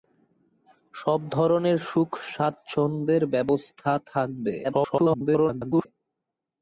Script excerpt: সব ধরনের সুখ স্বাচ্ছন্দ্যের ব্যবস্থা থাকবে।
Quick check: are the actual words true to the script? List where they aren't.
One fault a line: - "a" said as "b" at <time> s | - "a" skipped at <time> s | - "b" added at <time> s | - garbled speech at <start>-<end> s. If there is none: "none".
- garbled speech at 4.6-5.9 s